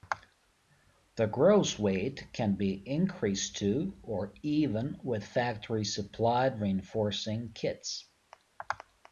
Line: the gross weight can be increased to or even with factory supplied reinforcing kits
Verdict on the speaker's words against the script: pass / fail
pass